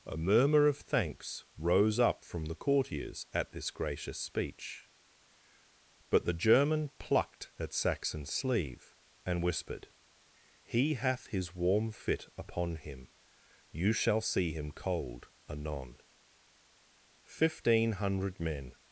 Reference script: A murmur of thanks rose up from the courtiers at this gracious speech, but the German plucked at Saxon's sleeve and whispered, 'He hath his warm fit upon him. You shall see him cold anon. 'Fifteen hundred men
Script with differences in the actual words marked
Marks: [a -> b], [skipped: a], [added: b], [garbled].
A murmur of thanks rose up from the courtiers at this gracious speech, but the German plucked at Saxon's sleeve and whispered, 'He hath his warm fit upon him. You shall see him cold anon. 'Fifteen hundred men